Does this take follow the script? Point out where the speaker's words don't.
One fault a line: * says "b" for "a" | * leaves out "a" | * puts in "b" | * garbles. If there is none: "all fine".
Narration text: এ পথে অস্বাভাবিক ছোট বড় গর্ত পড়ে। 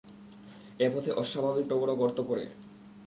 * leaves out "ছোট"